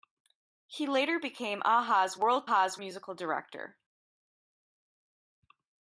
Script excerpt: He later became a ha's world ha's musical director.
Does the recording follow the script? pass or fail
pass